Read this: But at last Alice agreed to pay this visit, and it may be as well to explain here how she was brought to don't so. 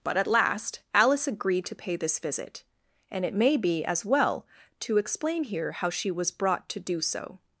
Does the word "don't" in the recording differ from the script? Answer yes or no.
yes